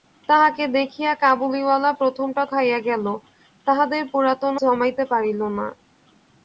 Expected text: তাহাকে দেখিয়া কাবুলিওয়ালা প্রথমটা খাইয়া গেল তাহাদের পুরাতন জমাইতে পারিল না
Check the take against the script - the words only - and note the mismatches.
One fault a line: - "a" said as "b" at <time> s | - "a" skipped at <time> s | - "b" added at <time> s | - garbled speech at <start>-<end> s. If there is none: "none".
none